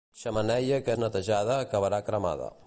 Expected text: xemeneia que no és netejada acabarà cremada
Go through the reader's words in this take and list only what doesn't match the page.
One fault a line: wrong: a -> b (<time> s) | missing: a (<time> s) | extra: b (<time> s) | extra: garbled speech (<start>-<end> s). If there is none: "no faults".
missing: no (0.9 s)